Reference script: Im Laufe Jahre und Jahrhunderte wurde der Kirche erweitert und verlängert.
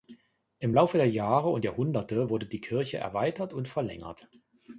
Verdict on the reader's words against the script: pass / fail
fail